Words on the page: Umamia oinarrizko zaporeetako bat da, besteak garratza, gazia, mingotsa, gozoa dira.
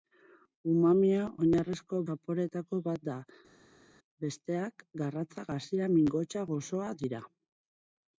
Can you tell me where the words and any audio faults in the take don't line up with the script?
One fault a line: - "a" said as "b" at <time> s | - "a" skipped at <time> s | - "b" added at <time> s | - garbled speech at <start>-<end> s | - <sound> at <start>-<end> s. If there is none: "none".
none